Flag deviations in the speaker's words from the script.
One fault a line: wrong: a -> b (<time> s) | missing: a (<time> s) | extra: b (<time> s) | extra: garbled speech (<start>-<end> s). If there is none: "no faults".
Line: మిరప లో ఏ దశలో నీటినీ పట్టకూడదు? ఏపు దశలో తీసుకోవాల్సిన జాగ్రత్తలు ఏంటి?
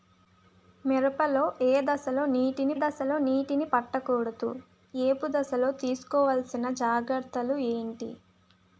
extra: దశలో నీటినీ (2.8 s)